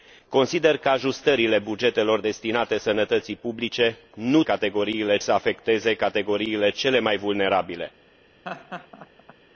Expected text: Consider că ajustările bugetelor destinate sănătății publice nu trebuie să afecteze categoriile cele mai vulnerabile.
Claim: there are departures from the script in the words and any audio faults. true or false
true